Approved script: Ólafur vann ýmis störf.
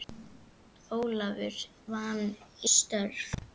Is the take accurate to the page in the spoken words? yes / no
no